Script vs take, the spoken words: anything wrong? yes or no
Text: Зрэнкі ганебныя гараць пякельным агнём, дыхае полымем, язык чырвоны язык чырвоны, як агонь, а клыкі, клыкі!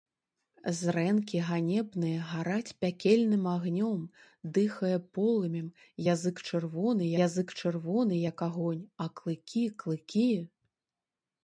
no